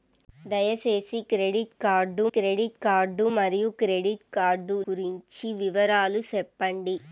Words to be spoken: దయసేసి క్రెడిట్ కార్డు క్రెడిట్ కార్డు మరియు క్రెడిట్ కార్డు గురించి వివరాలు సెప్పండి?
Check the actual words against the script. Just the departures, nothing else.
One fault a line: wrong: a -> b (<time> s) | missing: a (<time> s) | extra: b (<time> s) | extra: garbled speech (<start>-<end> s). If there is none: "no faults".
no faults